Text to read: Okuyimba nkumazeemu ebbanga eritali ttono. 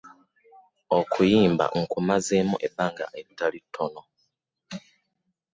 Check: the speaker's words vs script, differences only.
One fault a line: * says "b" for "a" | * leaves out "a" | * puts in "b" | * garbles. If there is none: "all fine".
all fine